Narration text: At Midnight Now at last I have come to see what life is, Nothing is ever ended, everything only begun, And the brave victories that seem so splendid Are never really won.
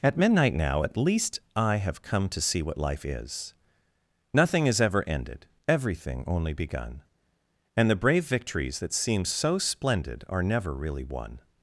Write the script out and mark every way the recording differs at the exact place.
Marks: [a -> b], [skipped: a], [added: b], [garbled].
At Midnight Now at [last -> least] I have come to see what life is, Nothing is ever ended, everything only begun, And the brave victories that seem so splendid Are never really won.